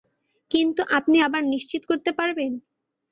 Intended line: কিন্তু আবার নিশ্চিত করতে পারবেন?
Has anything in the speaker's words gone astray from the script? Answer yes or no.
yes